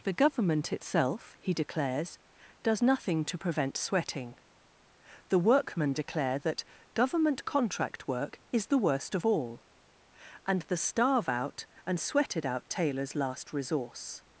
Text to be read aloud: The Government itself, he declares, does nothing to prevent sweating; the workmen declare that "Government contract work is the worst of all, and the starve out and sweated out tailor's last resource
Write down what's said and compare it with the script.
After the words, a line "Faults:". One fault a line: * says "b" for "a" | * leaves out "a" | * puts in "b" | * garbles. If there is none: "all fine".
The Government itself, he declares, does nothing to prevent sweating; the workmen declare that "Government contract work is the worst of all, and the starve out and sweated out tailor's last resource
Faults:
all fine